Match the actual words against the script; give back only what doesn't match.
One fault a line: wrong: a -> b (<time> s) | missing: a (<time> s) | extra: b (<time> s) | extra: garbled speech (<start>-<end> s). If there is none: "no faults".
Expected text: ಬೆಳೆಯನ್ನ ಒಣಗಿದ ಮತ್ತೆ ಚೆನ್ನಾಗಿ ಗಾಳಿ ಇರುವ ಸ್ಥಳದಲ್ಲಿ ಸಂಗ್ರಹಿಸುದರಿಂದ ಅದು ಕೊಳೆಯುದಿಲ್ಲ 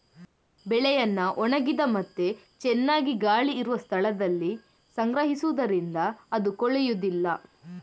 no faults